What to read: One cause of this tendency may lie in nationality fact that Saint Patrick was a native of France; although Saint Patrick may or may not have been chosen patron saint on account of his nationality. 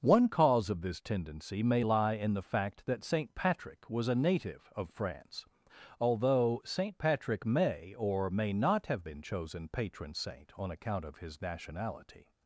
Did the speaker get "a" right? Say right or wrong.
right